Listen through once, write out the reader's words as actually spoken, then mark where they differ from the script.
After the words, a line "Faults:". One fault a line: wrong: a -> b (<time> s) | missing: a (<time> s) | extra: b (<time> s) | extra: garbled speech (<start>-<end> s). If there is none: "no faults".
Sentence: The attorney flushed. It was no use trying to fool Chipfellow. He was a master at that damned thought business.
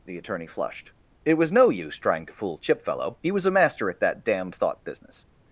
The attorney flushed. It was no use trying to fool Chipfellow. He was a master at that damned thought business.
Faults:
no faults